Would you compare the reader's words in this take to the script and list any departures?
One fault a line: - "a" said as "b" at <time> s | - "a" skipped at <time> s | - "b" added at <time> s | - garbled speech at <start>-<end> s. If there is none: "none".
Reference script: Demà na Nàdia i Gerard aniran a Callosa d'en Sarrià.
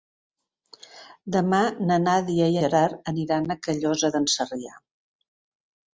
none